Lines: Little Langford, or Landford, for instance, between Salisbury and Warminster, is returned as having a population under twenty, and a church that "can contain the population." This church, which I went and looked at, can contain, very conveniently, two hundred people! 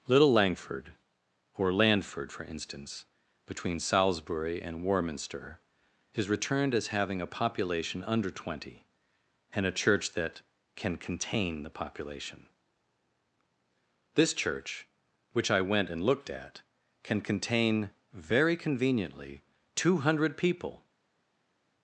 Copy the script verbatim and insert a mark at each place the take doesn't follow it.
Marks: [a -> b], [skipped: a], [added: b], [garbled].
Little Langford, or Landford, for instance, between Salisbury and Warminster, is returned as having a population under twenty, and a church that "can contain the population." This church, which I went and looked at, can contain, very conveniently, two hundred people!